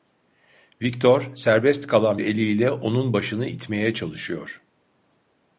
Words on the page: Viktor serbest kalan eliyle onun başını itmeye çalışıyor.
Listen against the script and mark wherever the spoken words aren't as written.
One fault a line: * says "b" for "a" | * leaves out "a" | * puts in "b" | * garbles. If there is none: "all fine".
all fine